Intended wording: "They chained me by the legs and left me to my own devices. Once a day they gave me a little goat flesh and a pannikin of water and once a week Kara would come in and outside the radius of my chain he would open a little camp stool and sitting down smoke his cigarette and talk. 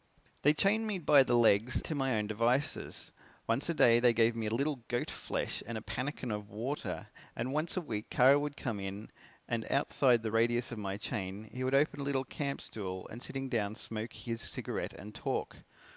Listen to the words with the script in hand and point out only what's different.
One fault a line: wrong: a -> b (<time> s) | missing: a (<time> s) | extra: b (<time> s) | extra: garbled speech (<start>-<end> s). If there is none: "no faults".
missing: and left me (1.8 s)